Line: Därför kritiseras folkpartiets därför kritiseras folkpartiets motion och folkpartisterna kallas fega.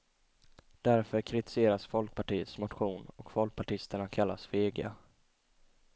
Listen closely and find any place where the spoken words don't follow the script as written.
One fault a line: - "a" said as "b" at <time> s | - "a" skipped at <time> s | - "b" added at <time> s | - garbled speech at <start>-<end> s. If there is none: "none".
- "därför kritiseras folkpartiets" skipped at 2.6 s